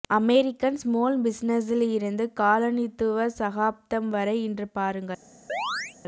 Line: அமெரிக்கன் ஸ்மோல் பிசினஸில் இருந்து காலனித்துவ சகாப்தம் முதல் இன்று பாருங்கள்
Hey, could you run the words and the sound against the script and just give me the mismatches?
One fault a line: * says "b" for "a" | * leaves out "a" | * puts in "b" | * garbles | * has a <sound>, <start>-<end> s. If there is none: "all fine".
* says "வரை" for "முதல்"
* has a chirp, 5.5-6.0 s